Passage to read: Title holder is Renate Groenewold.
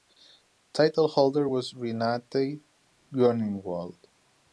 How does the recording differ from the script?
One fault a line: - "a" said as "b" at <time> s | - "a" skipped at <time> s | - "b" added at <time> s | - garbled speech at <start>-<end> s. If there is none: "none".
- "is" said as "was" at 1.4 s